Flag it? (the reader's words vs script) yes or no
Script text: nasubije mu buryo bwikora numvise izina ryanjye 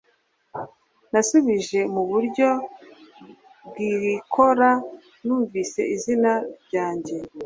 no